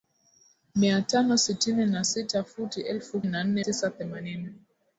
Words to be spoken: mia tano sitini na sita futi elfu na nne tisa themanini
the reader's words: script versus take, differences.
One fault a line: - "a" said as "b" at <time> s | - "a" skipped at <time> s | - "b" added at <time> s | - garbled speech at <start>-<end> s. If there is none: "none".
none